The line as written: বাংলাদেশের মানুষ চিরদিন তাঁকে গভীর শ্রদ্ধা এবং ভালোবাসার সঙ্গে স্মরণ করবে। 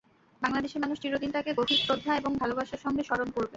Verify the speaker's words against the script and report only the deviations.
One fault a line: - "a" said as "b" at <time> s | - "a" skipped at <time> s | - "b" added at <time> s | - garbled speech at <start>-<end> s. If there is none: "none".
none